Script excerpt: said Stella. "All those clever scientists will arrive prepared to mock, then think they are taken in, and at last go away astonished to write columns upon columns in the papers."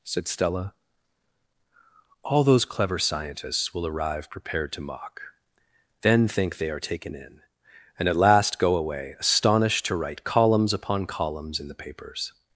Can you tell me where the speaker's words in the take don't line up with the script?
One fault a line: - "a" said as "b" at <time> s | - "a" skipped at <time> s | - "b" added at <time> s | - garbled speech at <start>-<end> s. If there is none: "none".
none